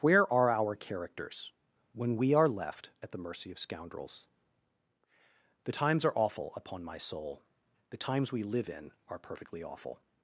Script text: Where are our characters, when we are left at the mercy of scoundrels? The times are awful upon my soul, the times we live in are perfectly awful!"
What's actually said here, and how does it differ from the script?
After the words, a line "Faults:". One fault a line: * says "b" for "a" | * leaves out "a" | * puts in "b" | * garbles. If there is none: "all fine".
Where are our characters, when we are left at the mercy of scoundrels? The times are awful upon my soul, the times we live in are perfectly awful!"
Faults:
all fine